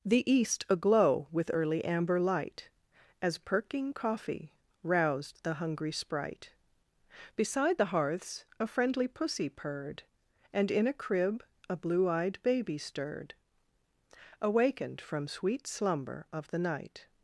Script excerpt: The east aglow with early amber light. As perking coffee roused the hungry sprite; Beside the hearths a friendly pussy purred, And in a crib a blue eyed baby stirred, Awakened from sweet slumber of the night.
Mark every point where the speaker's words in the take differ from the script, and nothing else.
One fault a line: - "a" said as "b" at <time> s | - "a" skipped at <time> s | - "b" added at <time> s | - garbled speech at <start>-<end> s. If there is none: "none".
none